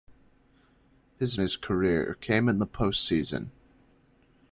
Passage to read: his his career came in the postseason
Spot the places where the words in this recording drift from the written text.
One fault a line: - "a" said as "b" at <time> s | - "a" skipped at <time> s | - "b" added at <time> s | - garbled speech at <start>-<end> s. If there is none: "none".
none